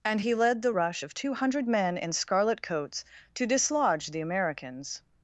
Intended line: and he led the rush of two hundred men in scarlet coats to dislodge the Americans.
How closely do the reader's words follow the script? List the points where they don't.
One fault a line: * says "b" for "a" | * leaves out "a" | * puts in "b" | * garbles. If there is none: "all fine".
all fine